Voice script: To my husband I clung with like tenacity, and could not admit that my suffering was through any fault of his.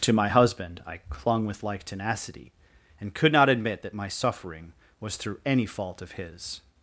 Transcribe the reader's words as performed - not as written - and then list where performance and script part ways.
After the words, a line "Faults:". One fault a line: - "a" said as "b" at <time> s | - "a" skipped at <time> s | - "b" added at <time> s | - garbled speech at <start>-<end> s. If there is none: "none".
To my husband I clung with like tenacity, and could not admit that my suffering was through any fault of his.
Faults:
none